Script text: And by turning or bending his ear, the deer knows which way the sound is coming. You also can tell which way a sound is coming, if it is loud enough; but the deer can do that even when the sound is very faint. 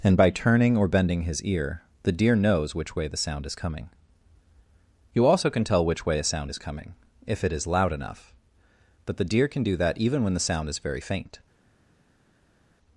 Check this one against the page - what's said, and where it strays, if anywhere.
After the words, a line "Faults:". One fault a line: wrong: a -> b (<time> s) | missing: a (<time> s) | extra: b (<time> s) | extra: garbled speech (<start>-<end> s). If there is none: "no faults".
And by turning or bending his ear, the deer knows which way the sound is coming. You also can tell which way a sound is coming, if it is loud enough; but the deer can do that even when the sound is very faint.
Faults:
no faults